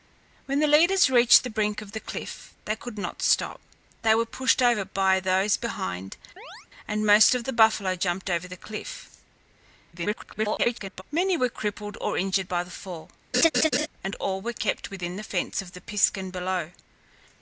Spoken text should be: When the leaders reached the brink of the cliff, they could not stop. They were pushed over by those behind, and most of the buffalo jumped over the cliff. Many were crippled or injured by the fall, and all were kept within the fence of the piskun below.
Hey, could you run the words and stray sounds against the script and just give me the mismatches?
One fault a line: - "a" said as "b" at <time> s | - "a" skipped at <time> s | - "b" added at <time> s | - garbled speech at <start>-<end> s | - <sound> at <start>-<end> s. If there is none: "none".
- chirp at 6.4-6.7 s
- garbled speech at 9.9-11.0 s
- laugh at 13.3-13.9 s